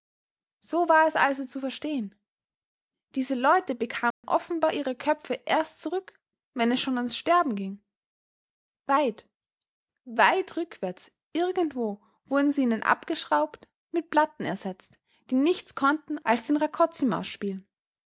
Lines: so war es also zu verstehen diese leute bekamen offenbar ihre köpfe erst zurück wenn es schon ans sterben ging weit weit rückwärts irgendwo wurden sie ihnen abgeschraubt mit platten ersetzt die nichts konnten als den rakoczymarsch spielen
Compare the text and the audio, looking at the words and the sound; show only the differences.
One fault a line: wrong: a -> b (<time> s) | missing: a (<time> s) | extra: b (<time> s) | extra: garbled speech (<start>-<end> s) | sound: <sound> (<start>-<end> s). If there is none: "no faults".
sound: dropout (4.1-4.2 s)